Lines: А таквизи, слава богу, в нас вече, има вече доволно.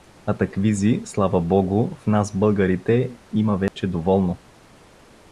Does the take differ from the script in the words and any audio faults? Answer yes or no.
yes